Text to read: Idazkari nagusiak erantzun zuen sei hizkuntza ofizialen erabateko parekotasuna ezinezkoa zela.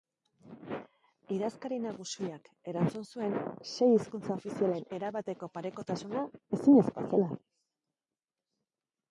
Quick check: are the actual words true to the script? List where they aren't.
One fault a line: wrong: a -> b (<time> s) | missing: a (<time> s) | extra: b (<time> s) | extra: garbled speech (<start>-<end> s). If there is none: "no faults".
no faults